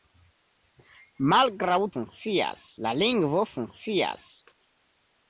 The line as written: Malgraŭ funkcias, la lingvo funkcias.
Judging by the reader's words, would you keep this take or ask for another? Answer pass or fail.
pass